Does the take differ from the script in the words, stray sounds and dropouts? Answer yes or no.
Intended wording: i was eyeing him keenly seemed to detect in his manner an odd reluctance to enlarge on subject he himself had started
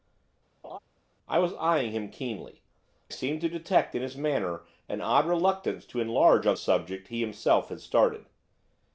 yes